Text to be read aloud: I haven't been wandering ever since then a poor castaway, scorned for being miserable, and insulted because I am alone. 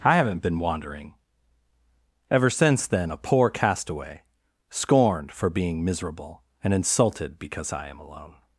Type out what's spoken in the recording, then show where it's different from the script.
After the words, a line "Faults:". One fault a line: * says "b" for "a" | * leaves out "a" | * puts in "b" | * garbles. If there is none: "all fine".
I haven't been wandering ever since then a poor castaway, scorned for being miserable, and insulted because I am alone.
Faults:
all fine